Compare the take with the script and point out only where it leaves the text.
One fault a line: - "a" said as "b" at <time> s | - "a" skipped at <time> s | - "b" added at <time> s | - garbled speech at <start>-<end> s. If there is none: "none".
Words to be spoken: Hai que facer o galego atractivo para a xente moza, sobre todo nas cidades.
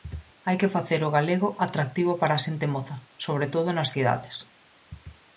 none